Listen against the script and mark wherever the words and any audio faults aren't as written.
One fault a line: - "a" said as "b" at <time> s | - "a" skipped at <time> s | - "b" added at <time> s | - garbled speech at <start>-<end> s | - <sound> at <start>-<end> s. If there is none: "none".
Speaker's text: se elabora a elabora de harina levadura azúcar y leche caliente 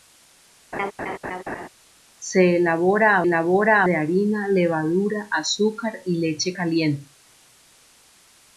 - laugh at 0.7-1.7 s